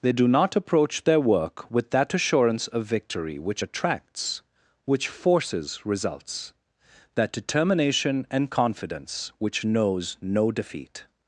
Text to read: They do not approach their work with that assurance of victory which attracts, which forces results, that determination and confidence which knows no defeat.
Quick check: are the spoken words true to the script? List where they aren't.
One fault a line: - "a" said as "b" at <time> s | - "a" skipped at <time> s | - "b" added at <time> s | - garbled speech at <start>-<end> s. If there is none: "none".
none